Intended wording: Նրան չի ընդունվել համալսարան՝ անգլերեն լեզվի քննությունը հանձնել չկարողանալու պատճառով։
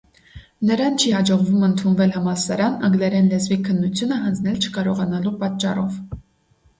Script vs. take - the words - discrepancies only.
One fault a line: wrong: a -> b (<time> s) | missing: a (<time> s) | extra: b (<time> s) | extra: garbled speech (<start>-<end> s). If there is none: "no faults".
extra: հաջողվում (1.1 s)